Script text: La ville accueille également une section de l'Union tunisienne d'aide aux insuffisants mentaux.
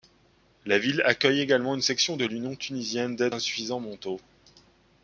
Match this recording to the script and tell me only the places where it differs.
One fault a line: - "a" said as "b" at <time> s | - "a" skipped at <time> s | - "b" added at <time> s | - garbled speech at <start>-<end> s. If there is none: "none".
- "aux" skipped at 3.3 s